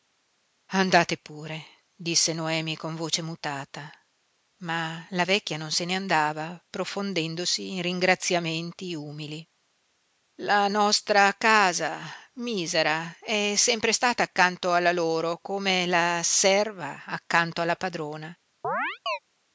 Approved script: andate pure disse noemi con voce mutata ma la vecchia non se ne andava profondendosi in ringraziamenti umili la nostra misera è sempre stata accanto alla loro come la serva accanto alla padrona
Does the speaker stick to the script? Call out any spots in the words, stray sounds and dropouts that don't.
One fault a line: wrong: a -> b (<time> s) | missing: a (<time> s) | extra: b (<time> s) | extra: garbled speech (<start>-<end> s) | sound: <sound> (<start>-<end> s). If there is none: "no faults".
extra: casa (11.3 s)
sound: chirp (18.6-19.2 s)